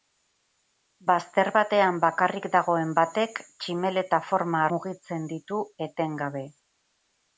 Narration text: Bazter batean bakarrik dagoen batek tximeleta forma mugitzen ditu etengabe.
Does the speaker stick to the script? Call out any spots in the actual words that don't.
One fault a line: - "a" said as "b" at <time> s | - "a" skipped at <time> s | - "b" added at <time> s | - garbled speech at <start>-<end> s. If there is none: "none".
none